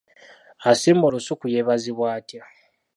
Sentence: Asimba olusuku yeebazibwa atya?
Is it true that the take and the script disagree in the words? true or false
false